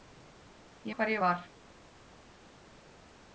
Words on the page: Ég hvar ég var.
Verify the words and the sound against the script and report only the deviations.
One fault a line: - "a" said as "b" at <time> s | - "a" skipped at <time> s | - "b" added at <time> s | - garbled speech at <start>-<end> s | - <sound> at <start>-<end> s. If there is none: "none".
none